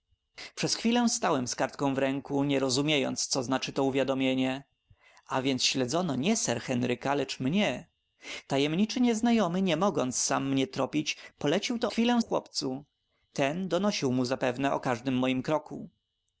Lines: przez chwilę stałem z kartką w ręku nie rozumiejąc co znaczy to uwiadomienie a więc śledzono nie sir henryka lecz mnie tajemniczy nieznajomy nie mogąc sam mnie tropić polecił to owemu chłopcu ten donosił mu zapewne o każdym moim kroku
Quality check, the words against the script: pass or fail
fail